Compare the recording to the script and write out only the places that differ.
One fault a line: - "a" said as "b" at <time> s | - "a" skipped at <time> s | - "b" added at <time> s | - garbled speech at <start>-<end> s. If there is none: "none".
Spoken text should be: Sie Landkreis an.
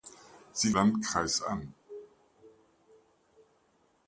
none